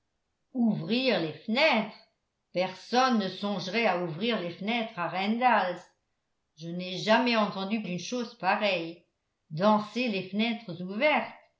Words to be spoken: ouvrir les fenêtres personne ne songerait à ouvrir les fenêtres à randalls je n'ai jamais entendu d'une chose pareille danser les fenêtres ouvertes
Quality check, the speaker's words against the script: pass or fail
pass